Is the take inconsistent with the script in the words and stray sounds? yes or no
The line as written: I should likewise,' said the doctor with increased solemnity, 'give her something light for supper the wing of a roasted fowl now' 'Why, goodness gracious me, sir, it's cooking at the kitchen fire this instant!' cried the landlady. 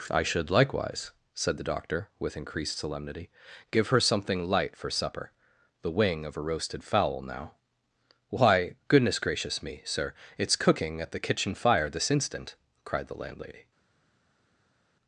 no